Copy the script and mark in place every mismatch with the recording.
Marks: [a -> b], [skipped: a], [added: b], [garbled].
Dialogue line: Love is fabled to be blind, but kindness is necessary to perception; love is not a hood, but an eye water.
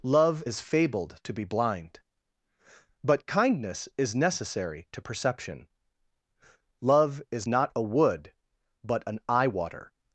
Love is fabled to be blind, but kindness is necessary to perception; love is not a [hood, -> wood] but an eye water.